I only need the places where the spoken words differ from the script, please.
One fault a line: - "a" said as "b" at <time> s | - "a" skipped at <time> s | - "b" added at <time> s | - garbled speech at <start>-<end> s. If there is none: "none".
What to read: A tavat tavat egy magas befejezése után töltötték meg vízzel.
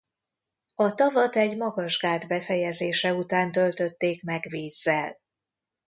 - "tavat" skipped at 1.4 s
- "gát" added at 2.0 s